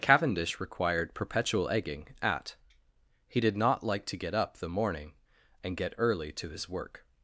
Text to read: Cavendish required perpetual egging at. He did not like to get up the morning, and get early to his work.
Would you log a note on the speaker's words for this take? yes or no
no